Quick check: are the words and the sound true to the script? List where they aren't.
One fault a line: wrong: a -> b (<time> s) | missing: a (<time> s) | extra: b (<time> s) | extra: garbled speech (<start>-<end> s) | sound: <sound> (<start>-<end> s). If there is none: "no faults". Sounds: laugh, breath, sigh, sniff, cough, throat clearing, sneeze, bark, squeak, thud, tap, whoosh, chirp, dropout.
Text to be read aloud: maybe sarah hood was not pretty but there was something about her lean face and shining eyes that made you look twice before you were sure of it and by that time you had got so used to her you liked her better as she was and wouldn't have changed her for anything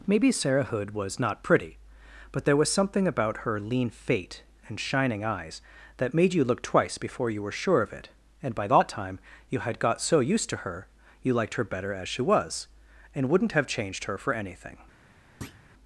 wrong: face -> fate (3.9 s)
sound: thud (15.4-15.6 s)